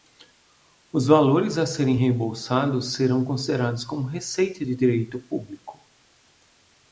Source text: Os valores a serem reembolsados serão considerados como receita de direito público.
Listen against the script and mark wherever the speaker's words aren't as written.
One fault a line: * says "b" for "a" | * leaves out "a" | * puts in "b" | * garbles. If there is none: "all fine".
all fine